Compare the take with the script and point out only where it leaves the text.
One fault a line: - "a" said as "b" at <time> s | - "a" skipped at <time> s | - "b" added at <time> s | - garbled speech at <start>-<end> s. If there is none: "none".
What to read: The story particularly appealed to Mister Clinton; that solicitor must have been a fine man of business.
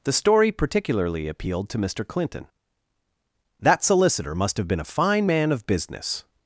none